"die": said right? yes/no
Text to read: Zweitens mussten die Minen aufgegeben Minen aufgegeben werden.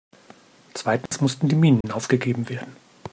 yes